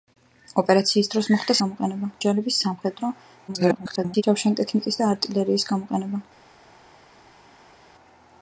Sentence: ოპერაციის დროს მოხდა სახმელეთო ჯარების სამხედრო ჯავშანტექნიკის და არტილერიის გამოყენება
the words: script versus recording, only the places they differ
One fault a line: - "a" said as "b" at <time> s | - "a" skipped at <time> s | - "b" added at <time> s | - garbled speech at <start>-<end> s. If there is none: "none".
- "სახმელეთო" said as "გამოყენება" at 1.6 s
- garbled speech at 3.5-4.2 s